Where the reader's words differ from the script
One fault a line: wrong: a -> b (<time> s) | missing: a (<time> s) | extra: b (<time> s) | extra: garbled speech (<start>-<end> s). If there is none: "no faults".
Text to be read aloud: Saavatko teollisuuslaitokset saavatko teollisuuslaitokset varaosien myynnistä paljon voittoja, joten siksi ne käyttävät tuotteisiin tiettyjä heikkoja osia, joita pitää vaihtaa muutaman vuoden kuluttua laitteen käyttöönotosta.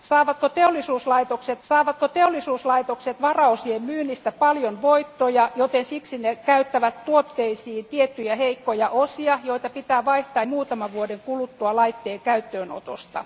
no faults